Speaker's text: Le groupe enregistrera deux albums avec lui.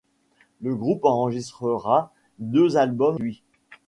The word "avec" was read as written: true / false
false